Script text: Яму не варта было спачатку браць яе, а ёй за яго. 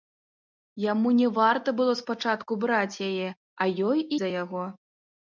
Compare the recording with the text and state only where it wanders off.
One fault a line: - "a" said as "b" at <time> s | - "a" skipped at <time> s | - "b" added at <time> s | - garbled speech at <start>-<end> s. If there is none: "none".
none